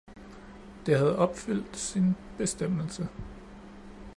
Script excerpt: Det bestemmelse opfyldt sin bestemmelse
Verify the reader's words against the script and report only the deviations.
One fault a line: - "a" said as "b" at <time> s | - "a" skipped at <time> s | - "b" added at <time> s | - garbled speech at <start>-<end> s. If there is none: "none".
- "bestemmelse" said as "havde" at 1.0 s